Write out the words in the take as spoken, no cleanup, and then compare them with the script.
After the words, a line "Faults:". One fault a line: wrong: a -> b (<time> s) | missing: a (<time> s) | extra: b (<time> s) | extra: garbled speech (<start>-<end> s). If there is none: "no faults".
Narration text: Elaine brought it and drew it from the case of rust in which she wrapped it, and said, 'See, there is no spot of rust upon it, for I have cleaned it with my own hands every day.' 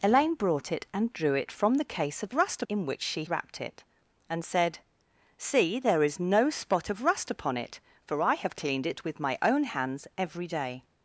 Elaine brought it and drew it from the case of rust in which she wrapped it, and said, 'See, there is no spot of rust upon it, for I have cleaned it with my own hands every day.'
Faults:
no faults